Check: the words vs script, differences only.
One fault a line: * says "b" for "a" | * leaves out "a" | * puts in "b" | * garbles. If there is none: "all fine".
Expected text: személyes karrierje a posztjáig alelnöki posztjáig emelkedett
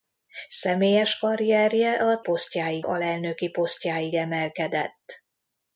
all fine